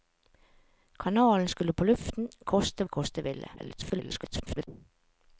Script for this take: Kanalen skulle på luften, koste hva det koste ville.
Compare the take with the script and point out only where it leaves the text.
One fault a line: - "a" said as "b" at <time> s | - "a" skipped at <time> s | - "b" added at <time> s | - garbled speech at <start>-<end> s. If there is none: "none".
- "hva" skipped at 2.9 s
- garbled speech at 3.6-4.7 s